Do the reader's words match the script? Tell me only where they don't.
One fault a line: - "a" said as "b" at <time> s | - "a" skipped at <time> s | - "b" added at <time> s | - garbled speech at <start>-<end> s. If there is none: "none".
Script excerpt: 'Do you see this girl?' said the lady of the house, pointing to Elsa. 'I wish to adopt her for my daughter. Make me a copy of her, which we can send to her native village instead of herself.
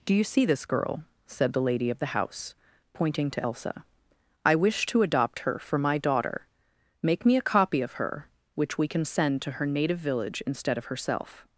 none